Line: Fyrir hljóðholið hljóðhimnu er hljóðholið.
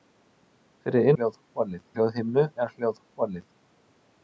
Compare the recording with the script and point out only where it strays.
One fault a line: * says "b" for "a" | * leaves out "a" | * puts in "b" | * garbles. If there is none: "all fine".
all fine